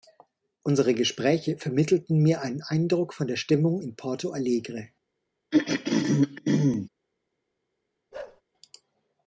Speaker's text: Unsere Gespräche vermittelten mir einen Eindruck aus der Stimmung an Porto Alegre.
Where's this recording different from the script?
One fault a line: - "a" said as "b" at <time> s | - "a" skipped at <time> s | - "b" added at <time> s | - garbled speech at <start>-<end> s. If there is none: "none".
- "aus" said as "von" at 3.1 s
- "an" said as "in" at 3.8 s